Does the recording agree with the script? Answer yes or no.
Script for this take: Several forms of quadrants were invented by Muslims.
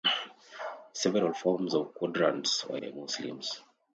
no